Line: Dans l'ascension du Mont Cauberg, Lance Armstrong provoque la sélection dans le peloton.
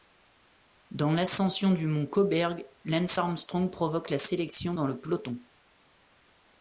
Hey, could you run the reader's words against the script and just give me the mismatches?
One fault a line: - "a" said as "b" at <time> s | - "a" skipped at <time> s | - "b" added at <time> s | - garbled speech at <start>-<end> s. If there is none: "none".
none